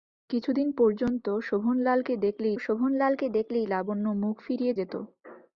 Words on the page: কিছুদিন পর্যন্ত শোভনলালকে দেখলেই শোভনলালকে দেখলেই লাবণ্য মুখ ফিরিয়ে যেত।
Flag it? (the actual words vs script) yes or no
no